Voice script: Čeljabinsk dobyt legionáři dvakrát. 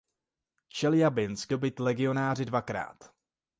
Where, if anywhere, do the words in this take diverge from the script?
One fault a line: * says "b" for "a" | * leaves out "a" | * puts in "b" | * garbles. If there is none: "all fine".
all fine